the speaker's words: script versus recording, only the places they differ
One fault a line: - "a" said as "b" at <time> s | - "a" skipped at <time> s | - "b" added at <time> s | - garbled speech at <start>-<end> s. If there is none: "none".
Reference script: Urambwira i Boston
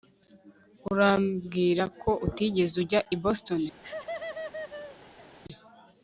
- "ko utigeze ujya" added at 2.0 s